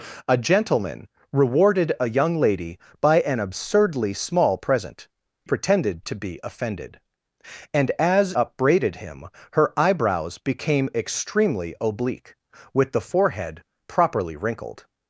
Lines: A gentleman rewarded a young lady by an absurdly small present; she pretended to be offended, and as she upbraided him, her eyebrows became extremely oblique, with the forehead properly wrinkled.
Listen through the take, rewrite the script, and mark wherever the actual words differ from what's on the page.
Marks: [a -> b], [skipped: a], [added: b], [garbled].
A gentleman rewarded a young lady by an absurdly small present; [skipped: she] pretended to be offended, and as [skipped: she] upbraided him, her eyebrows became extremely oblique, with the forehead properly wrinkled.